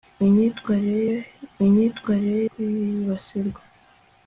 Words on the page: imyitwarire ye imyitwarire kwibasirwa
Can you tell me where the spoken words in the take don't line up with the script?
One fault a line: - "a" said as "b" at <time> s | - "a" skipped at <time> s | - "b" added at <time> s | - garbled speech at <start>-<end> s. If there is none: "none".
none